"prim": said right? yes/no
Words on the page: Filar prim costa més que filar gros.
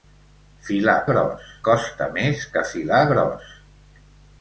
no